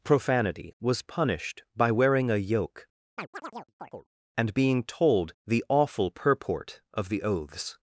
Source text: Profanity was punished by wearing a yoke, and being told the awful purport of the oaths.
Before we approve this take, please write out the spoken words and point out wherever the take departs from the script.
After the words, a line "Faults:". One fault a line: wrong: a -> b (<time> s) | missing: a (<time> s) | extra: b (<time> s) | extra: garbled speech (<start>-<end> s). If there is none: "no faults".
Profanity was punished by wearing a yoke, and being told the awful purport of the oaths.
Faults:
no faults